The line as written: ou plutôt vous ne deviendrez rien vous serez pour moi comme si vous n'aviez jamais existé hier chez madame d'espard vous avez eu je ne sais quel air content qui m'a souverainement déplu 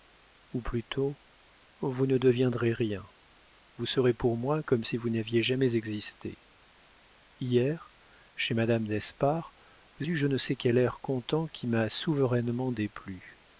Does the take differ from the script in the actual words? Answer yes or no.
yes